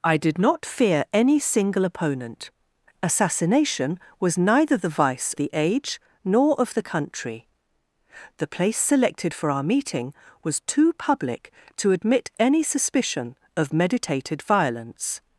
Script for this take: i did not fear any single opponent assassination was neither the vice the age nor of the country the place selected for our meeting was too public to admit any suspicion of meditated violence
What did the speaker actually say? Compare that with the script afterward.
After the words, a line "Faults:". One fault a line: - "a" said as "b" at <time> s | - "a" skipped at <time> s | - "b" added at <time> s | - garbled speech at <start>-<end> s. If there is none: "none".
i did not fear any single opponent assassination was neither the vice the age nor of the country the place selected for our meeting was too public to admit any suspicion of meditated violence
Faults:
none